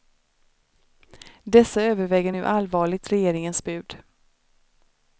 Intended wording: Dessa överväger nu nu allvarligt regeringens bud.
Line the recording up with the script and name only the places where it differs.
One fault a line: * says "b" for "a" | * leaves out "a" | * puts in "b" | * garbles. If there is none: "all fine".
* leaves out "nu"